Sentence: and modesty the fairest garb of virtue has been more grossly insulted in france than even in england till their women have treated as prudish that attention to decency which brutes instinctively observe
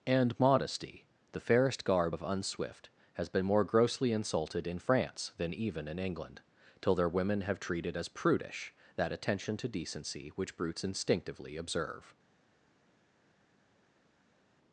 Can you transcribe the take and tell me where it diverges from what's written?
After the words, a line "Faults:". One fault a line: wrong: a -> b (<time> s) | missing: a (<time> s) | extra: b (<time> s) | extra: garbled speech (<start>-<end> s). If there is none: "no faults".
and modesty the fairest garb of unswift has been more grossly insulted in france than even in england till their women have treated as prudish that attention to decency which brutes instinctively observe
Faults:
wrong: virtue -> unswift (2.2 s)